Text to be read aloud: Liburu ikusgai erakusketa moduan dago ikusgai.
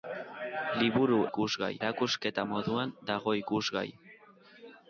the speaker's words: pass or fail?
pass